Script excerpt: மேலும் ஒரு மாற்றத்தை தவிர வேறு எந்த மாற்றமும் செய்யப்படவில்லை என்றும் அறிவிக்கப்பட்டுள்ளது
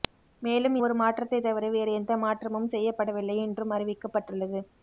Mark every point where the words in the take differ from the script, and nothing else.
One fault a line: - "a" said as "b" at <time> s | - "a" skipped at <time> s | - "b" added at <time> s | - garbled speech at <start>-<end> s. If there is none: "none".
none